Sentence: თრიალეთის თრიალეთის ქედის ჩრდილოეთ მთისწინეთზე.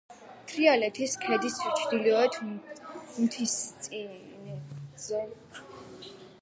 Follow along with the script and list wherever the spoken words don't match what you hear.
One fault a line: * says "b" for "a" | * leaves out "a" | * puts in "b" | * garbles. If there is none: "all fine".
* leaves out "თრიალეთის"